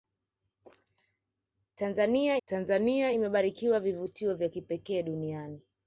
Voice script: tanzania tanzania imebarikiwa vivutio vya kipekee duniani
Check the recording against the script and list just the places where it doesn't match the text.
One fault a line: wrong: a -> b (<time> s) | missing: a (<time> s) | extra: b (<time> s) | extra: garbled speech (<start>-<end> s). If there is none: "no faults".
no faults